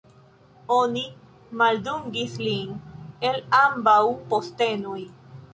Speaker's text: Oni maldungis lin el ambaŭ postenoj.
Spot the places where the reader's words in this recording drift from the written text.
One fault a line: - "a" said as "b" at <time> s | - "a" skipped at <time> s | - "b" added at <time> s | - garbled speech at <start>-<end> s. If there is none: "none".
none